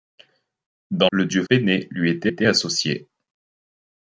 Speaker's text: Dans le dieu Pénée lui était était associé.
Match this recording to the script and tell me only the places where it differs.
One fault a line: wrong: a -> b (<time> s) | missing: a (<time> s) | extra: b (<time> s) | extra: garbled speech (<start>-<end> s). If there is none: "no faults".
no faults